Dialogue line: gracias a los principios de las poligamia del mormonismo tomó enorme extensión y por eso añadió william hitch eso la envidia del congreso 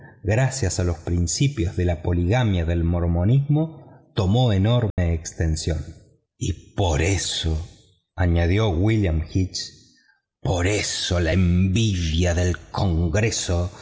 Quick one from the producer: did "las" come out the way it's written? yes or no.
no